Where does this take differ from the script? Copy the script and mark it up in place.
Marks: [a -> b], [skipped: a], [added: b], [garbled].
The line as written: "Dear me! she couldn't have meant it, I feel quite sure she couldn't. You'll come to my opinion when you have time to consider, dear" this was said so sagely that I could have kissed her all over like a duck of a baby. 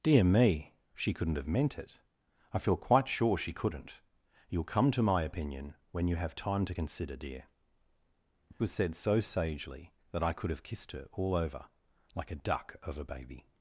"Dear me! she couldn't have meant it, I feel quite sure she couldn't. You'll come to my opinion when you have time to consider, dear" [skipped: this] was said so sagely that I could have kissed her all over like a duck of a baby.